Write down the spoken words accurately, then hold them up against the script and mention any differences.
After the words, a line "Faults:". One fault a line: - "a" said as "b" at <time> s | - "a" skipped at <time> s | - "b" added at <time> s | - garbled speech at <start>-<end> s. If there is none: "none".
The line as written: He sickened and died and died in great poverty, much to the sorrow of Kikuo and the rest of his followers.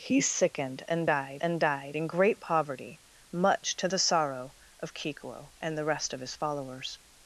He sickened and died and died in great poverty, much to the sorrow of Kikuo and the rest of his followers.
Faults:
none